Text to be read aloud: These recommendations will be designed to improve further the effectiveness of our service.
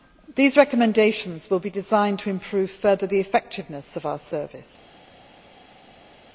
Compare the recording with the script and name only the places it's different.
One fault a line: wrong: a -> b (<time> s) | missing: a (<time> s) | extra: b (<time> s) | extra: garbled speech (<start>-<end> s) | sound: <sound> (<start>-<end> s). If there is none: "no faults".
no faults